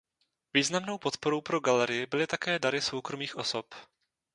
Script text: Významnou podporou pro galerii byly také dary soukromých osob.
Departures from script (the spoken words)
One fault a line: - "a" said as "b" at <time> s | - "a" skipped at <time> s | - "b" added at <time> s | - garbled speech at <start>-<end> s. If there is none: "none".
none